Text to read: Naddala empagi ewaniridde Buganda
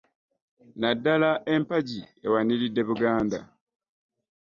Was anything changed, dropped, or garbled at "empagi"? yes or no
no